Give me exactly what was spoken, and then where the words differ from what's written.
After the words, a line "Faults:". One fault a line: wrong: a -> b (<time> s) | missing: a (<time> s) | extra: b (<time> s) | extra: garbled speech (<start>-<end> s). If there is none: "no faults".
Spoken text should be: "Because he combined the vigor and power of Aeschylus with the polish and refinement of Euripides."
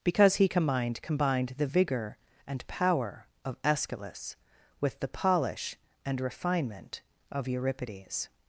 "Because he combined combined the vigor and power of Aeschylus with the polish and refinement of Euripides."
Faults:
extra: combined (1.0 s)